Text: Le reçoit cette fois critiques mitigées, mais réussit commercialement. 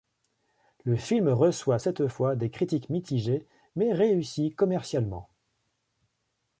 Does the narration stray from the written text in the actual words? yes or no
yes